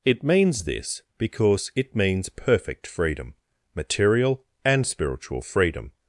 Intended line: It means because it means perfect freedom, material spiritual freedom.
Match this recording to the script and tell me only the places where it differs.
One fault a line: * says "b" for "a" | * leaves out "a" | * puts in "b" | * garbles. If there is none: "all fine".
* puts in "this"
* puts in "and"